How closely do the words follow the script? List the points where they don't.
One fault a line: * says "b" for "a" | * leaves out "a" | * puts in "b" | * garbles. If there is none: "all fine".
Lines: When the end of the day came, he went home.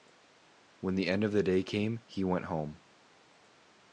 all fine